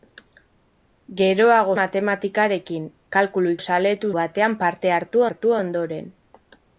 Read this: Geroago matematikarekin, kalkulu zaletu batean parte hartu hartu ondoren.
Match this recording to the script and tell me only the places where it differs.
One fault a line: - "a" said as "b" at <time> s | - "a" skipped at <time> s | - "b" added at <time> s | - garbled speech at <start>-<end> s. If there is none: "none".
none